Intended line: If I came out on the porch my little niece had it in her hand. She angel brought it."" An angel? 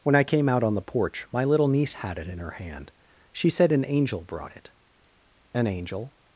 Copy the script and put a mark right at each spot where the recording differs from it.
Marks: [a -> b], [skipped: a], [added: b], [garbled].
[If -> When] I came out on the porch my little niece had it in her hand. She [added: said an] angel brought it."" An angel?